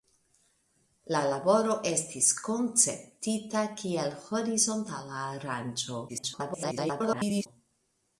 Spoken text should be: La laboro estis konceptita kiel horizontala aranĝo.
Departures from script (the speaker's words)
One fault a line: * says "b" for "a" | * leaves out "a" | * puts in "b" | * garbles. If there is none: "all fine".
* garbles